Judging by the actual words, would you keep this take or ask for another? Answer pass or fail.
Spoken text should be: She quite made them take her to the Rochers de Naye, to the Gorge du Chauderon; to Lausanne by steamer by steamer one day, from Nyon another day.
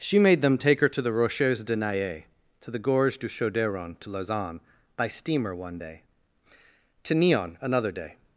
fail